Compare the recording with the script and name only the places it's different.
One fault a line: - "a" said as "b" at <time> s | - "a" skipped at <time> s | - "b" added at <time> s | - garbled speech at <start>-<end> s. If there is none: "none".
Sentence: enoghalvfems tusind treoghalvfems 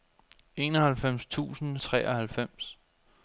none